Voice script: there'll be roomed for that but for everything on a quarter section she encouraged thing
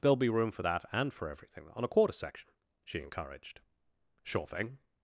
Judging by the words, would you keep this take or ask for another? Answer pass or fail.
fail